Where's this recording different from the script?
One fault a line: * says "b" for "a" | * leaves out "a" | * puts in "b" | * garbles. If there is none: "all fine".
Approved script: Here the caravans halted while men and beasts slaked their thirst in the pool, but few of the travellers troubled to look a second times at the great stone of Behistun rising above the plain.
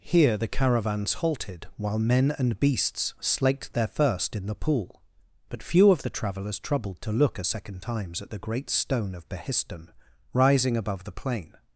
all fine